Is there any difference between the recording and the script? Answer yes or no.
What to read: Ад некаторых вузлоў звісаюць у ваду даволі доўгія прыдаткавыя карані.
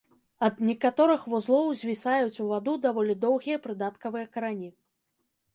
no